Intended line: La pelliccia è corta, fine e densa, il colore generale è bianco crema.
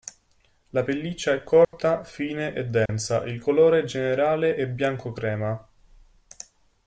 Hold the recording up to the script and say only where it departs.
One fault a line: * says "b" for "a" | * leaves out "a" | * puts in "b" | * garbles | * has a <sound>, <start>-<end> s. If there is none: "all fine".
* has a dropout, 1.6-1.7 s
* has a dropout, 2.9-2.9 s